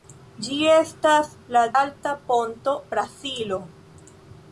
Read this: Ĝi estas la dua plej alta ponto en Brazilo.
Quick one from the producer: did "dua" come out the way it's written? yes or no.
no